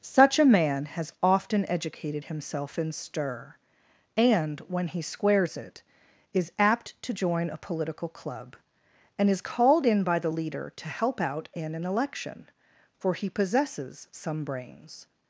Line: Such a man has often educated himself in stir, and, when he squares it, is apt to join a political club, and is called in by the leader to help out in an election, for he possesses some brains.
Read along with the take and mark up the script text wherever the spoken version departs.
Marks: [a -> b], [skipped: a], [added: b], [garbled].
Such a man has often educated himself in stir, and, when he squares it, is apt to join a political club, and is called in by the leader to help out in an election, for he possesses some brains.